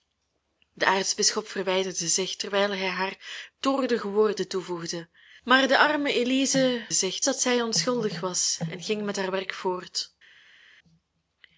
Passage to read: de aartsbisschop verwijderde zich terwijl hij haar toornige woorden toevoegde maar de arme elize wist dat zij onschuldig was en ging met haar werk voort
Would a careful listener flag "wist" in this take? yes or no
yes